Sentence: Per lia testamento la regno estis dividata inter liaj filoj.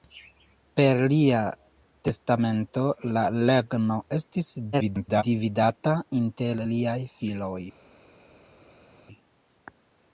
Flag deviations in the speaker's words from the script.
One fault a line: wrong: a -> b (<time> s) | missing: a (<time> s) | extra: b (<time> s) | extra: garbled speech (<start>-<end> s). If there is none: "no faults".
extra: garbled speech (4.7-5.2 s)